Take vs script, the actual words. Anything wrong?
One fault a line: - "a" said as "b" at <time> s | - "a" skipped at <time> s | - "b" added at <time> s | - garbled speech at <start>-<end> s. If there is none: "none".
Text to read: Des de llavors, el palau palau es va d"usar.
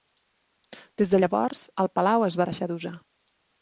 - "palau" skipped at 2.3 s
- "deixar" added at 2.5 s